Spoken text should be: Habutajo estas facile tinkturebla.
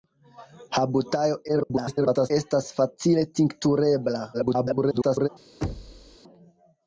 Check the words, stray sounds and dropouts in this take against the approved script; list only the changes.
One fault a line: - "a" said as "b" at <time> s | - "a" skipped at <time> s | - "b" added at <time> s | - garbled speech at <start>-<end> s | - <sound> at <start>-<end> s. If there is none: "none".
- garbled speech at 1.5-2.3 s
- garbled speech at 4.3-5.3 s
- thud at 5.6-6.2 s